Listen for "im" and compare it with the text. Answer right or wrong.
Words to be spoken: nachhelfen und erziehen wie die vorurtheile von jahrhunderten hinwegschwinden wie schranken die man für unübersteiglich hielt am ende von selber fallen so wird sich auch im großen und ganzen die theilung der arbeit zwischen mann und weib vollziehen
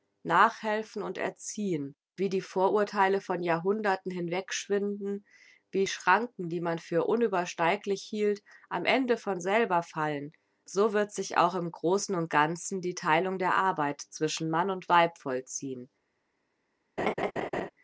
right